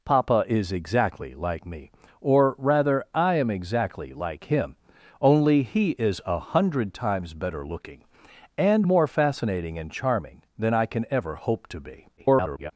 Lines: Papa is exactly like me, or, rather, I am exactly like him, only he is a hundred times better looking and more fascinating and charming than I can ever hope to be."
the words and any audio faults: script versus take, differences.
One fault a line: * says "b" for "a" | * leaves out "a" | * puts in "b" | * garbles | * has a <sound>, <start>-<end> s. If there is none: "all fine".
* garbles